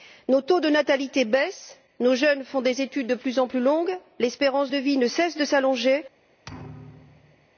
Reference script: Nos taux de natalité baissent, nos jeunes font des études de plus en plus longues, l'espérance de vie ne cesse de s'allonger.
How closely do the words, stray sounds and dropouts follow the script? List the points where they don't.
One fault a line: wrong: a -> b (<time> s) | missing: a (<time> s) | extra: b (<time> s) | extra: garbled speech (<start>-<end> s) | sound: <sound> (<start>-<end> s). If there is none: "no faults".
sound: thud (6.4-7.5 s)